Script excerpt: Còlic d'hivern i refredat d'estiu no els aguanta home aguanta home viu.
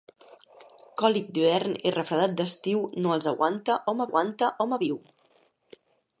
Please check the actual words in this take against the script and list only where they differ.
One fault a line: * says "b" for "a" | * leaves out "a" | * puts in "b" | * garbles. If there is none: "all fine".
all fine